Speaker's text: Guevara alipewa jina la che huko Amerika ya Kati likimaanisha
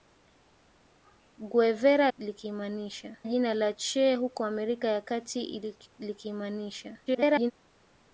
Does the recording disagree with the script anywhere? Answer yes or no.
yes